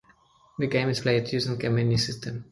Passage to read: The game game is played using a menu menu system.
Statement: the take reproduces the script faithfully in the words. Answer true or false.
false